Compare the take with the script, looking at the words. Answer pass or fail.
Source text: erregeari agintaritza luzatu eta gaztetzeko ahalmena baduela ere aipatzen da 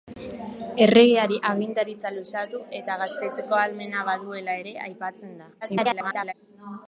fail